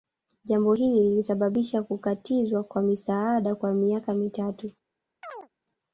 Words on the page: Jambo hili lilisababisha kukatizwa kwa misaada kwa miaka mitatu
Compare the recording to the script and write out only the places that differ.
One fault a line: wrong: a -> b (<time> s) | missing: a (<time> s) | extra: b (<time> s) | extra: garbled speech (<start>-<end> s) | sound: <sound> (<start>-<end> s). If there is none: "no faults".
sound: chirp (5.2-5.5 s)